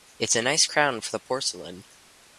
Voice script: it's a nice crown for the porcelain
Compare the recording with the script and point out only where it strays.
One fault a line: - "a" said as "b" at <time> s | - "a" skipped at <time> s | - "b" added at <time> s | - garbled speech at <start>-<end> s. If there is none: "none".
none